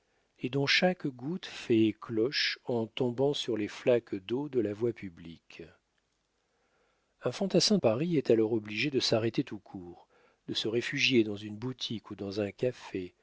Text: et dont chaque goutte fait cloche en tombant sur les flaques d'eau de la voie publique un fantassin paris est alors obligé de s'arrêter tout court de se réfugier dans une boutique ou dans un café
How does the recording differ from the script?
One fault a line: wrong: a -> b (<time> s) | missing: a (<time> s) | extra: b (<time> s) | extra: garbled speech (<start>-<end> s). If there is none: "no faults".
no faults